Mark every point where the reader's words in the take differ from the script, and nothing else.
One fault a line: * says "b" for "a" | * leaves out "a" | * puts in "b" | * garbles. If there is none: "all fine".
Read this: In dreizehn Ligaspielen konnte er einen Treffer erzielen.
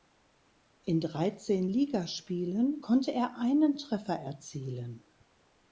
all fine